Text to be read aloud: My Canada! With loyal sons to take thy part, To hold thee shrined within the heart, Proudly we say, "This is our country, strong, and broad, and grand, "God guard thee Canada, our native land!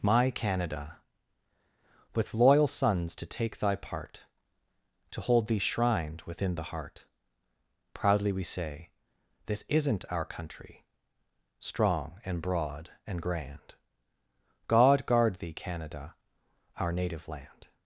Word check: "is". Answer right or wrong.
wrong